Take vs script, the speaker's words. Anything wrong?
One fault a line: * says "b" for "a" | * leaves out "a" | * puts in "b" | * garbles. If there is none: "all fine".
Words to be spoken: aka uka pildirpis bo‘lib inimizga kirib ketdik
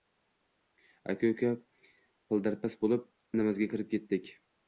all fine